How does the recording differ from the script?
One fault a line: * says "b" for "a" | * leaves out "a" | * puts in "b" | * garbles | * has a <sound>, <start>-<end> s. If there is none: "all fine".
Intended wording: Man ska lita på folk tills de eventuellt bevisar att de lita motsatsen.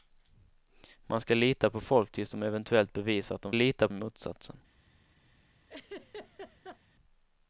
* has a laugh, 5.7-6.8 s